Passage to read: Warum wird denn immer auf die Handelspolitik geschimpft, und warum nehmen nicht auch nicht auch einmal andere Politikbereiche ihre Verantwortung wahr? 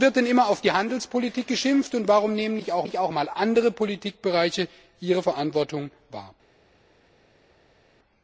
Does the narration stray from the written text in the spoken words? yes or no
no